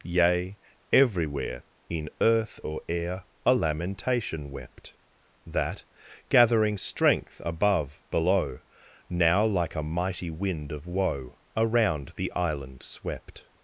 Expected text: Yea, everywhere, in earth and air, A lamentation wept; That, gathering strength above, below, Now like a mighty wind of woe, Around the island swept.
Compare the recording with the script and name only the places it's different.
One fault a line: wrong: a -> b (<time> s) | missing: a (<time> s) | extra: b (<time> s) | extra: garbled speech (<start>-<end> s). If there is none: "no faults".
wrong: and -> or (2.6 s)